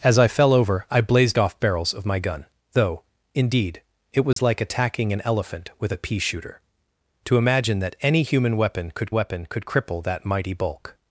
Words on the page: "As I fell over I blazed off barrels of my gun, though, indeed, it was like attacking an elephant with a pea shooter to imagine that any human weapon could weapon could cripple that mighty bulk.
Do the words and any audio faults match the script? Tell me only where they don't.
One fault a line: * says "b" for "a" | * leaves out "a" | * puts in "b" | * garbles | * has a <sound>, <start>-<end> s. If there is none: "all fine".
* has a dropout, 4.3-4.4 s